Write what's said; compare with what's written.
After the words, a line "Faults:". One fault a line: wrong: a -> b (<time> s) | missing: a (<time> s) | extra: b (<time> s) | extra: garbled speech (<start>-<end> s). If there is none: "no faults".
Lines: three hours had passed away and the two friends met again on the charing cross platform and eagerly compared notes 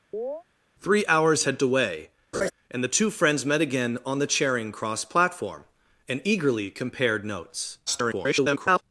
three hours had away and the two friends met again on the charing cross platform and eagerly compared notes [garbled]
Faults:
missing: passed (1.6 s)
extra: garbled speech (7.9-8.8 s)